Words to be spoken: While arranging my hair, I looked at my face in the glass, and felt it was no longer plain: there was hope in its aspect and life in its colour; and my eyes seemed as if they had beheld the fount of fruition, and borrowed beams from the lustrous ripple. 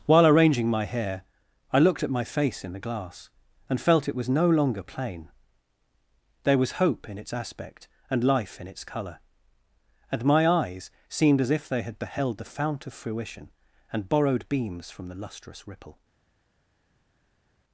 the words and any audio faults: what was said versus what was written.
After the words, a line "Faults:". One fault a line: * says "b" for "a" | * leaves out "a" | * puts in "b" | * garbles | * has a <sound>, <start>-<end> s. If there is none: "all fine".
While arranging my hair, I looked at my face in the glass, and felt it was no longer plain: there was hope in its aspect and life in its colour; and my eyes seemed as if they had beheld the fount of fruition, and borrowed beams from the lustrous ripple.
Faults:
all fine